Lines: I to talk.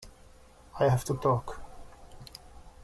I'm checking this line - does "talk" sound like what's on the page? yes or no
yes